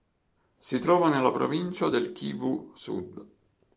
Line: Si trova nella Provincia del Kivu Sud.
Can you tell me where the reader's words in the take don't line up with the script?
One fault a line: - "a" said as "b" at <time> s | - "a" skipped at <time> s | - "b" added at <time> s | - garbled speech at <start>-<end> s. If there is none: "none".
none